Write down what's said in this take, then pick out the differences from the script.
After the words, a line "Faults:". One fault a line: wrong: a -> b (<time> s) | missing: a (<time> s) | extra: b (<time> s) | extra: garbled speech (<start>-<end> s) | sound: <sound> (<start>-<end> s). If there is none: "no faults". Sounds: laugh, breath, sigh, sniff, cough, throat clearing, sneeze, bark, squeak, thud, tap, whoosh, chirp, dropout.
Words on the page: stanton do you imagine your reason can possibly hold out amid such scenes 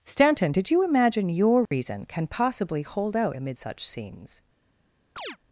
stanton did you imagine your reason can possibly hold out amid such scenes
Faults:
wrong: do -> did (0.5 s)
sound: dropout (1.7-1.7 s)
sound: chirp (5.2-5.4 s)